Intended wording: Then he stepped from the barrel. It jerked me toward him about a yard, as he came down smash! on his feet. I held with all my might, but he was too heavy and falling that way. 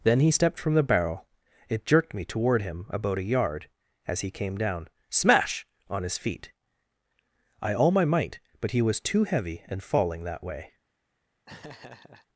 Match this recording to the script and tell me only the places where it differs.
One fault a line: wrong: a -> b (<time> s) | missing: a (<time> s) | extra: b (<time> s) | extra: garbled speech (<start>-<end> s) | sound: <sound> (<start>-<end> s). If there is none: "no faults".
missing: held with (7.7 s)
sound: laugh (11.5-12.3 s)